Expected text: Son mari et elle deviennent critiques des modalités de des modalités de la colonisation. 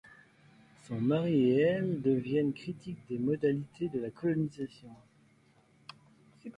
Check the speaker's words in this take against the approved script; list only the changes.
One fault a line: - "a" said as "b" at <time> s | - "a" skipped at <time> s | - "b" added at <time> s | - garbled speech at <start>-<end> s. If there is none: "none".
- "des modalités de" skipped at 4.0 s